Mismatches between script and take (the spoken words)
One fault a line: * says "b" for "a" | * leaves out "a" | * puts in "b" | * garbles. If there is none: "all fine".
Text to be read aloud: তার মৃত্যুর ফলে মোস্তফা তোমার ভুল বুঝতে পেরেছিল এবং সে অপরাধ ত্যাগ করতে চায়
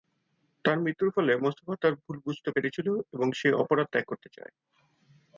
* says "তার" for "তোমার"